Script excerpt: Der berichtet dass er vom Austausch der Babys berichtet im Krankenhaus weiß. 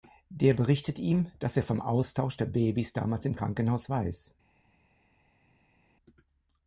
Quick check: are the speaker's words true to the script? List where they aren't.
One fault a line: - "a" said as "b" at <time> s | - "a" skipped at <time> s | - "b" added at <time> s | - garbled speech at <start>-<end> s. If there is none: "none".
- "ihm" added at 1.0 s
- "berichtet" said as "damals" at 2.9 s